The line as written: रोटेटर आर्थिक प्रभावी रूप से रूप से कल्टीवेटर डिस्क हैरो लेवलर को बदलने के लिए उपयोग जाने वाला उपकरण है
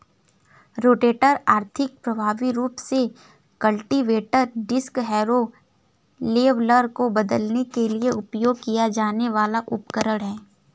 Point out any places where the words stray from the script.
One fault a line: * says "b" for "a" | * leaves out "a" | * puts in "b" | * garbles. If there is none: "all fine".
* leaves out "रूप से"
* puts in "किया"